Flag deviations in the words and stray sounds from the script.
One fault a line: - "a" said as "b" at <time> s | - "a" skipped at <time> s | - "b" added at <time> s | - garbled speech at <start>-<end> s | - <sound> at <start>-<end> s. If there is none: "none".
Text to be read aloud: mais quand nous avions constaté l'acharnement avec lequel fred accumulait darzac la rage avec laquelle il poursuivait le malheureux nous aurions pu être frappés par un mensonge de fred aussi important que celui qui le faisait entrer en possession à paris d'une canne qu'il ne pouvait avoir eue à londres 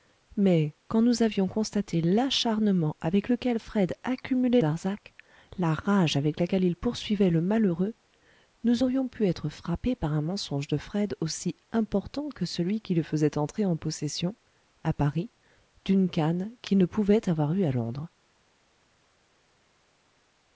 none